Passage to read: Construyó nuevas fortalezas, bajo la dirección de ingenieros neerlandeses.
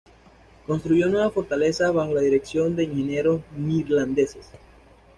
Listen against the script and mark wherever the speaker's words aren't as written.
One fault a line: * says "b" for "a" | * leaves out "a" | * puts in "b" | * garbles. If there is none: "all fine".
all fine